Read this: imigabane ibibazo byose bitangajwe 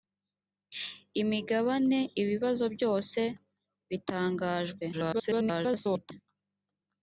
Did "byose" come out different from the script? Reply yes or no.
no